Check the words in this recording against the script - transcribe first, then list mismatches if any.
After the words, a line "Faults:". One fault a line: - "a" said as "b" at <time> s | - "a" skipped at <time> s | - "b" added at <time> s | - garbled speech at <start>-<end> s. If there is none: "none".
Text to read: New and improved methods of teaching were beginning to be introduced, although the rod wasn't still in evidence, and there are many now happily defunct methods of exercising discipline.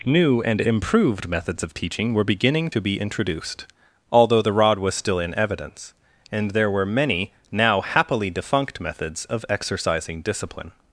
New and improved methods of teaching were beginning to be introduced, although the rod was still in evidence, and there were many now happily defunct methods of exercising discipline.
Faults:
- "wasn't" said as "was" at 4.8 s
- "are" said as "were" at 6.7 s